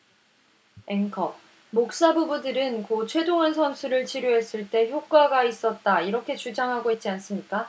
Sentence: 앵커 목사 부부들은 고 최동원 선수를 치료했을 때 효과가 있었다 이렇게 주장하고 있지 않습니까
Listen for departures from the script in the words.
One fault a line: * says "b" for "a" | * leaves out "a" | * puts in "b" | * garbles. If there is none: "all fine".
all fine